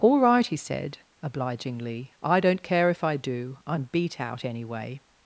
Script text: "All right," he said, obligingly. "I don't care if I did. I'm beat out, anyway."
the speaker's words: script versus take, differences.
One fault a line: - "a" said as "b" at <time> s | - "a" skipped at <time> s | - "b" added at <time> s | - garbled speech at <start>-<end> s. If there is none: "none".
- "did" said as "do" at 3.2 s